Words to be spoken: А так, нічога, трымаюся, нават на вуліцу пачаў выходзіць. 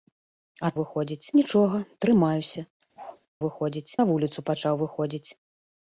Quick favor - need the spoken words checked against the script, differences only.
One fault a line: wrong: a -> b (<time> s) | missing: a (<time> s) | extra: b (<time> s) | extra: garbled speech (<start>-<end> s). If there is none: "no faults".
wrong: так -> выходзіць (0.8 s)
wrong: нават -> выходзіць (3.5 s)